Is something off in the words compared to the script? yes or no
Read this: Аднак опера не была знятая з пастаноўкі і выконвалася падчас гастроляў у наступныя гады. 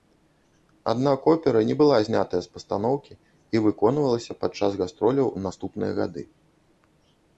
no